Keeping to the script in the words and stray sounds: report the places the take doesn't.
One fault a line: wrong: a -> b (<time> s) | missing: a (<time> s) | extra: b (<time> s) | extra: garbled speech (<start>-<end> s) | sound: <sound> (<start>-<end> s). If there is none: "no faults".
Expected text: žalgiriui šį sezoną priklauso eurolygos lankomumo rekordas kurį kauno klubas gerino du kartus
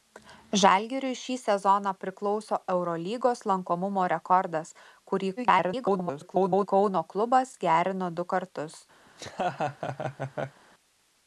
extra: garbled speech (5.4-6.7 s)
sound: laugh (9.1-10.6 s)